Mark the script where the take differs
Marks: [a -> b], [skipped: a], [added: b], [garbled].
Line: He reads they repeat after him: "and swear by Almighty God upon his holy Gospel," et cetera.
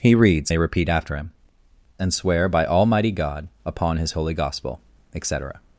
He reads they repeat after him: "and swear by Almighty God upon his holy Gospel," et cetera.